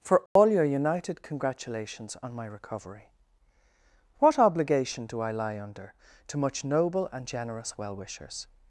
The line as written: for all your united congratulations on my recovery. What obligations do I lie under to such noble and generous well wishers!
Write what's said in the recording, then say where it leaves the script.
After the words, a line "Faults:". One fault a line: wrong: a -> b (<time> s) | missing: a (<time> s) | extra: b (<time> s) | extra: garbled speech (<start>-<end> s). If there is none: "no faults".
for all your united congratulations on my recovery. What obligation do I lie under to much noble and generous well wishers!
Faults:
wrong: obligations -> obligation (4.4 s)
wrong: such -> much (6.4 s)